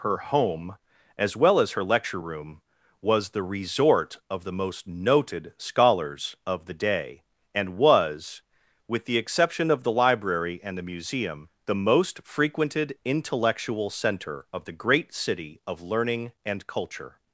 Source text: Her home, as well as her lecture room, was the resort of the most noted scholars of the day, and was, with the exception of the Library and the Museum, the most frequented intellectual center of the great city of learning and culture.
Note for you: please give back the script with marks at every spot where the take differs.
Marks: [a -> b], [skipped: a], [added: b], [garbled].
Her home, as well as her lecture room, was the resort of the most noted scholars of the day, and was, with the exception of the Library and the Museum, the most frequented intellectual center of the great city of learning and culture.